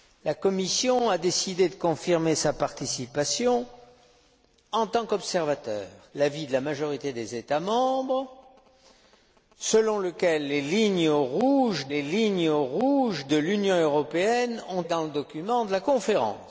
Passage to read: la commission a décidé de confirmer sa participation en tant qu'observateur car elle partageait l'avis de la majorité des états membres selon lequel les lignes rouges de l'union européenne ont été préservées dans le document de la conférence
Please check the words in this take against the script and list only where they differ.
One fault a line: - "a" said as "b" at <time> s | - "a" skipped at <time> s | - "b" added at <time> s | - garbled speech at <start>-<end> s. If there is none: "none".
- "car elle partageait" skipped at 5.9 s
- "les lignes rouges" added at 11.9 s
- "été préservées" skipped at 14.8 s